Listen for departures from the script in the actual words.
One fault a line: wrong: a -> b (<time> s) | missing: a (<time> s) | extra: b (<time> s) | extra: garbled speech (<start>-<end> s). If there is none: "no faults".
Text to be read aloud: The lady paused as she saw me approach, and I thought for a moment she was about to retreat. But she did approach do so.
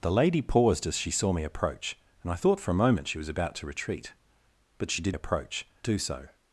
no faults